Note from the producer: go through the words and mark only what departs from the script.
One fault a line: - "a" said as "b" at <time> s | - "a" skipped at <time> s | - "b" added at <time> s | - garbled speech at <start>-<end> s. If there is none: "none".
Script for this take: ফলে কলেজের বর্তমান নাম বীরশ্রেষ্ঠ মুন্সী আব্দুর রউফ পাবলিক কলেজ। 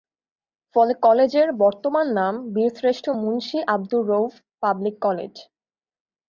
none